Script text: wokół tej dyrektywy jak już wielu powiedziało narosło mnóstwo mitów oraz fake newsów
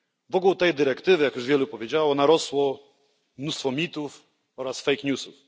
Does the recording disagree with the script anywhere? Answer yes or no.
no